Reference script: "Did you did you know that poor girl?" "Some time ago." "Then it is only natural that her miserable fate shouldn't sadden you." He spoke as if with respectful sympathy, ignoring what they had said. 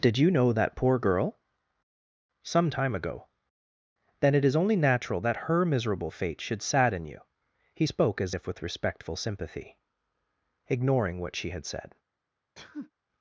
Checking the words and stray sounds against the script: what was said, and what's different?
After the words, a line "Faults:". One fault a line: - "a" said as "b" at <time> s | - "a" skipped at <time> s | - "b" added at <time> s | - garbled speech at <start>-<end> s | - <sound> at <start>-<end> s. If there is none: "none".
"Did you know that poor girl?" "Some time ago." "Then it is only natural that her miserable fate should sadden you." He spoke as if with respectful sympathy, ignoring what she had said.
Faults:
- "did you" skipped at 0.3 s
- "shouldn't" said as "should" at 6.4 s
- "they" said as "she" at 11.4 s
- sneeze at 12.6-12.9 s